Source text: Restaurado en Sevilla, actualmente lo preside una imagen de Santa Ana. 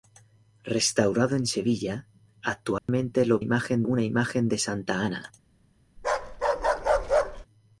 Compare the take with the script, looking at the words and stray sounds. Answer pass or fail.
fail